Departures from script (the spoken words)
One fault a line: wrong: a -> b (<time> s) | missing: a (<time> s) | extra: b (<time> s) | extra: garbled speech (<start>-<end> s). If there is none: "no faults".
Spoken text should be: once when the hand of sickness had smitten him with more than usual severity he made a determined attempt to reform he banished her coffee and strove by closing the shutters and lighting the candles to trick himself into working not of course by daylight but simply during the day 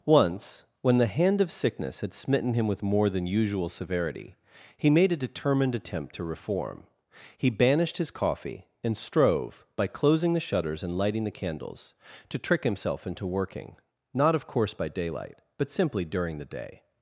wrong: her -> his (8.0 s)